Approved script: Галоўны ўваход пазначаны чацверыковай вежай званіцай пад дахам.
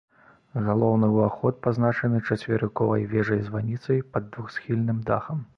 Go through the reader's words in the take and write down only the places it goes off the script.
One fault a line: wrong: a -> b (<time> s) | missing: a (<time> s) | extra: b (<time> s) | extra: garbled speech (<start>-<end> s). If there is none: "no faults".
extra: двухсхільным (4.4 s)